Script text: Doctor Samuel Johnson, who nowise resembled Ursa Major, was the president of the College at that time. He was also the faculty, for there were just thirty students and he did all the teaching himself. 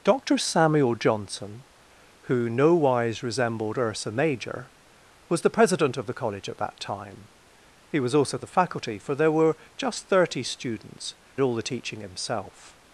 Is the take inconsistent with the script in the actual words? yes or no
yes